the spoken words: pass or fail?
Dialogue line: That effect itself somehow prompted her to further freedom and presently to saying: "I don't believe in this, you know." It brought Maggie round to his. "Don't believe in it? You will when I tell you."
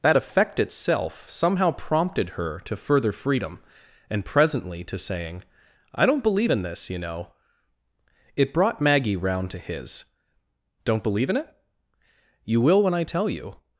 pass